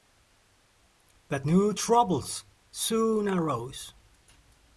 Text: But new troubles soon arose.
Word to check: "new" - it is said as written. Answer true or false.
true